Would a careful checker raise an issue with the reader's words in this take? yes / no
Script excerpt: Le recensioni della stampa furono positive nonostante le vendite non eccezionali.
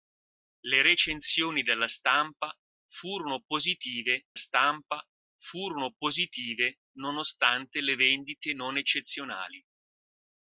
yes